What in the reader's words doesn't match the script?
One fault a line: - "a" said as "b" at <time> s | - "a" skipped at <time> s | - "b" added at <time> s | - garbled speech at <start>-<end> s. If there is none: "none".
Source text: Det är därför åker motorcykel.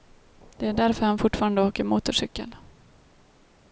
- "han fortfarande" added at 1.1 s